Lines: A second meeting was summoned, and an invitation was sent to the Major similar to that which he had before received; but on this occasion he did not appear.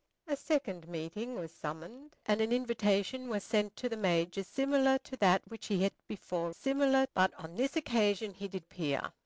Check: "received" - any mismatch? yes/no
yes